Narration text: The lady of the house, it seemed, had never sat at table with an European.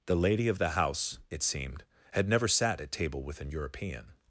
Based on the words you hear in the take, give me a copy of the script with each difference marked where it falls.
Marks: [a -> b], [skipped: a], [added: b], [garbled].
The lady of the house, it seemed, had never sat at table with an European.